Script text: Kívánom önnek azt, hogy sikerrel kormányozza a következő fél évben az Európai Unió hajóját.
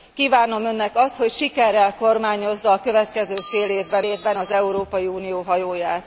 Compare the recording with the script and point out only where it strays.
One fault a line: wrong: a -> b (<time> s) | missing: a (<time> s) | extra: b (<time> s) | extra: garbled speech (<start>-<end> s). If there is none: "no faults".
extra: évben (4.0 s)